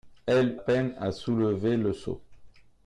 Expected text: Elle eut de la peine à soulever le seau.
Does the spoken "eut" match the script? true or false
false